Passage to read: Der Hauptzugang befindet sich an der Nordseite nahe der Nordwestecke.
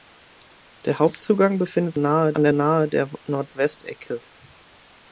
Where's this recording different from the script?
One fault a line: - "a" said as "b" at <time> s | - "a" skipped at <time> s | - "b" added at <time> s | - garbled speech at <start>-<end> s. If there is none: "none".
- "sich" said as "nahe" at 2.0 s
- "Nordseite" skipped at 2.5 s